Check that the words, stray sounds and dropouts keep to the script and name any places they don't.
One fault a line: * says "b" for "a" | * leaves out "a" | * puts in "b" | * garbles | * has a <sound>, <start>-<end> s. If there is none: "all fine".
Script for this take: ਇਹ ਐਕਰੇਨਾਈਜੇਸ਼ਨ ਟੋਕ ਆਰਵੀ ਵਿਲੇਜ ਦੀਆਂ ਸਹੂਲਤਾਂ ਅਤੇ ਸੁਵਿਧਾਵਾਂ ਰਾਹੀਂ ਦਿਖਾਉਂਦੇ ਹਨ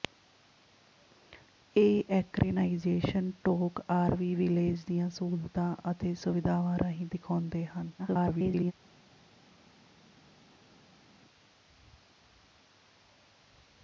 * garbles